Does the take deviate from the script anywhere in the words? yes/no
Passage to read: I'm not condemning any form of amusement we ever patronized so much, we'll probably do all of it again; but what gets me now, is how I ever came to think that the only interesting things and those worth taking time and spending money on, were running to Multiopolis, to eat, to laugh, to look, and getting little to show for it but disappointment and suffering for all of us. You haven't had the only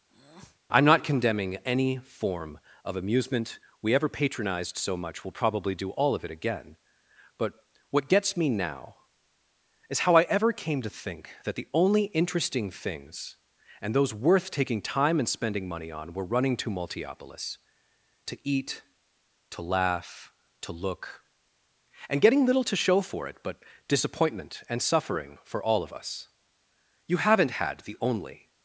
no